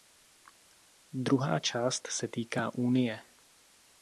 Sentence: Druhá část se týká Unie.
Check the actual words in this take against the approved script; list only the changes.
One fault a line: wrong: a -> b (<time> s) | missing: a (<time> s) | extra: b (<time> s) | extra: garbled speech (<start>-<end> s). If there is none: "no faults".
no faults